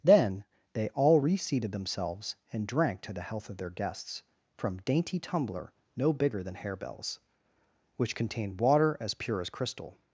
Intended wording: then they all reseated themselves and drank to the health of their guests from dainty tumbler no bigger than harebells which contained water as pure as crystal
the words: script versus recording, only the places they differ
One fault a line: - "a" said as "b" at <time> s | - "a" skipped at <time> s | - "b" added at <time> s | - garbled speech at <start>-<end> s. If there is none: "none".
none